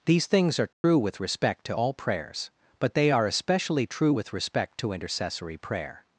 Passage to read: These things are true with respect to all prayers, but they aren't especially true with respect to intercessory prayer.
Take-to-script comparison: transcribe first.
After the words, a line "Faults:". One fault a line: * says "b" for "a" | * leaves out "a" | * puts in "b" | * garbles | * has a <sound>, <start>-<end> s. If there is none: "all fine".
These things are true with respect to all prayers, but they are especially true with respect to intercessory prayer.
Faults:
* has a dropout, 0.7-0.8 s
* says "are" for "aren't"